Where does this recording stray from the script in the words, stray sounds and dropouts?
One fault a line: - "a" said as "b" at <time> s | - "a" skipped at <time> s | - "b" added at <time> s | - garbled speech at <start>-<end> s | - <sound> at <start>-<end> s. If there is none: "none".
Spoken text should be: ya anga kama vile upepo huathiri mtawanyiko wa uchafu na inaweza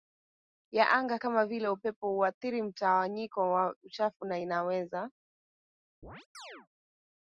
- chirp at 6.0-6.7 s